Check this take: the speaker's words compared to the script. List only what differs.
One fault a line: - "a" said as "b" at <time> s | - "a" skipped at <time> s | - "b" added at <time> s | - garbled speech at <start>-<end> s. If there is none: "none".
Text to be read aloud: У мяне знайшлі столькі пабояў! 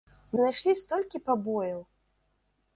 - "мяне" skipped at 0.4 s